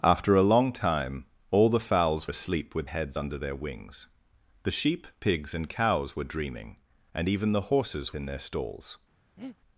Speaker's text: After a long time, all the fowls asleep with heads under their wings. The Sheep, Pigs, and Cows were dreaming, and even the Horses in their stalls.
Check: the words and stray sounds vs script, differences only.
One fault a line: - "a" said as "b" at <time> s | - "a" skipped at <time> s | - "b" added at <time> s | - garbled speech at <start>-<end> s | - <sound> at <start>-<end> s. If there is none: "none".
- breath at 9.4-9.6 s